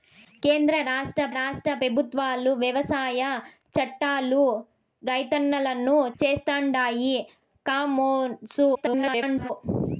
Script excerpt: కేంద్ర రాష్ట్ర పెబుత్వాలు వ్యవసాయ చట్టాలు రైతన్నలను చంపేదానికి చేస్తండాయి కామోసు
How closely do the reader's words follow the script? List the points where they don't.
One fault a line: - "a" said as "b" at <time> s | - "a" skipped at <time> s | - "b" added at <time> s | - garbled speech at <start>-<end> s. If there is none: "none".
- "రాష్ట్ర" added at 1.3 s
- "చంపేదానికి" skipped at 6.0 s
- garbled speech at 8.7-9.5 s